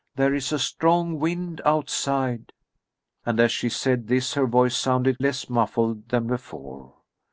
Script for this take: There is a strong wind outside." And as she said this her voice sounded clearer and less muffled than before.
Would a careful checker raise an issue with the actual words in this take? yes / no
yes